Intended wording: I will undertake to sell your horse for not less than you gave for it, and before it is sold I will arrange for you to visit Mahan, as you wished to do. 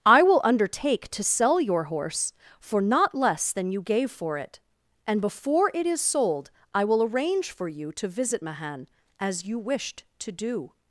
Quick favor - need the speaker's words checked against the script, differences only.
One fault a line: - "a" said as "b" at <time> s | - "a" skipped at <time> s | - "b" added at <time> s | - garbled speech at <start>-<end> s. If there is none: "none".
none